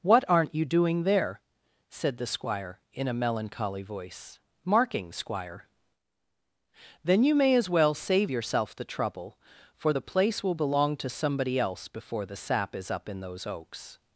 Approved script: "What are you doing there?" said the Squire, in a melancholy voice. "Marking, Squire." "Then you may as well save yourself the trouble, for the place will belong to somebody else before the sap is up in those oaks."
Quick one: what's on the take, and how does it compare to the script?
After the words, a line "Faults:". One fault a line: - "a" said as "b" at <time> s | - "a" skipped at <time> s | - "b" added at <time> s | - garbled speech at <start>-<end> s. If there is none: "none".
"What aren't you doing there?" said the Squire, in a melancholy voice. "Marking, Squire." "Then you may as well save yourself the trouble, for the place will belong to somebody else before the sap is up in those oaks."
Faults:
- "are" said as "aren't" at 0.3 s